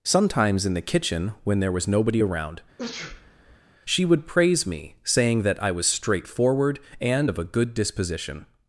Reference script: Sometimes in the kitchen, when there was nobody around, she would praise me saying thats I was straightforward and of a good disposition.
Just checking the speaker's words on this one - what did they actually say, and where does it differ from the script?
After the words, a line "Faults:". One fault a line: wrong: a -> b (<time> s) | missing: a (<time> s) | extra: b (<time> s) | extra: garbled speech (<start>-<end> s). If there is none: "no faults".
Sometimes in the kitchen, when there was nobody around, she would praise me saying that I was straightforward and of a good disposition.
Faults:
wrong: thats -> that (5.4 s)